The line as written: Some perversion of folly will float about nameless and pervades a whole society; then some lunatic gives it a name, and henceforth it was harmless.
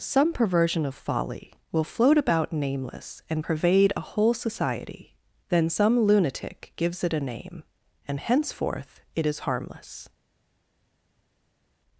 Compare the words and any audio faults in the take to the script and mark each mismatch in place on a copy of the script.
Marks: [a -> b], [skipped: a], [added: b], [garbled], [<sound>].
Some perversion of folly will float about nameless and [pervades -> pervade] a whole society; then some lunatic gives it a name, and henceforth it [was -> is] harmless.